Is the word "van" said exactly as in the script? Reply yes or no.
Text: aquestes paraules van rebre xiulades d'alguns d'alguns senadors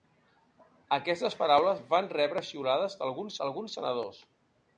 yes